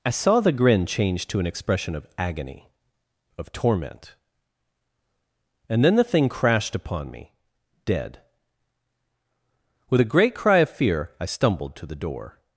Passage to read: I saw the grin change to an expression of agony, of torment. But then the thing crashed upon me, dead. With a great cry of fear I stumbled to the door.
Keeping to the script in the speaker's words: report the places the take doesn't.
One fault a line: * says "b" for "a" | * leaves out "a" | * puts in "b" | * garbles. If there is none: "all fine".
* says "And" for "But"